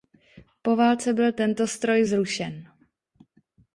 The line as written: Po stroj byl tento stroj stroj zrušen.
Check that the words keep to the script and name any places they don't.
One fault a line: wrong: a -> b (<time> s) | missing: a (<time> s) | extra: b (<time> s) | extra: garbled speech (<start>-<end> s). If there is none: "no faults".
wrong: stroj -> válce (0.8 s)
missing: stroj (2.0 s)